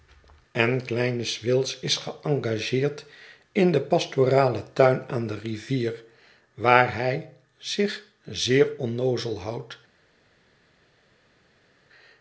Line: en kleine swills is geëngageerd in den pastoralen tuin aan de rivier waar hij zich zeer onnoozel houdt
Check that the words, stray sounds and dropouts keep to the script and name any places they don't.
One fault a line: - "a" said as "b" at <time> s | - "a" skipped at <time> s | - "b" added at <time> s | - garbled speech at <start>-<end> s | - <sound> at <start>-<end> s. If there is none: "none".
none